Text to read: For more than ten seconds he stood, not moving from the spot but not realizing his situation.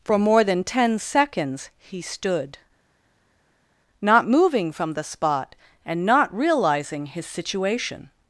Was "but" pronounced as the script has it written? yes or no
no